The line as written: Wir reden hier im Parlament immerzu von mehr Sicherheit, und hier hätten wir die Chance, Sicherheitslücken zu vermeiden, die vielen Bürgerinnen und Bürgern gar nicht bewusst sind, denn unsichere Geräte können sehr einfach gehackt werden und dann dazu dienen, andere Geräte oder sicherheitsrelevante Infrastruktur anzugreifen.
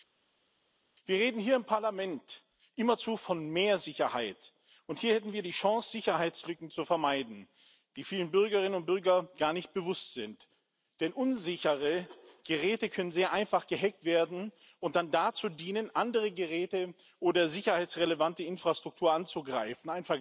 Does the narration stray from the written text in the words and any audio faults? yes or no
no